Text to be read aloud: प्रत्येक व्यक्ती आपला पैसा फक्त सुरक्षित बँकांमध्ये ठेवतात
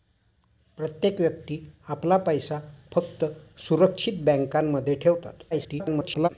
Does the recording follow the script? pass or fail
fail